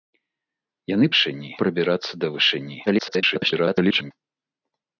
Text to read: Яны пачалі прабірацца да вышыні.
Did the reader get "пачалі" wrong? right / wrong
wrong